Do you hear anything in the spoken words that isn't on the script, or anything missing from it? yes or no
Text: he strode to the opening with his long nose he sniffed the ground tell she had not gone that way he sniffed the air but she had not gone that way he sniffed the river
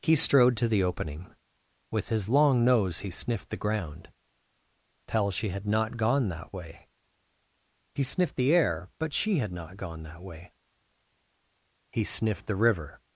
no